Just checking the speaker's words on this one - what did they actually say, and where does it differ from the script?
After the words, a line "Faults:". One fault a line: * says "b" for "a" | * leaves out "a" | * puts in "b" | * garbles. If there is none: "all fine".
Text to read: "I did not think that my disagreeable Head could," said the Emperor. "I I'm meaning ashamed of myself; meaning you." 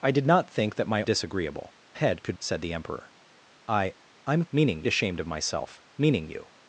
"I did not think that my disagreeable Head could," said the Emperor. "I I'm meaning ashamed of myself; meaning you."
Faults:
all fine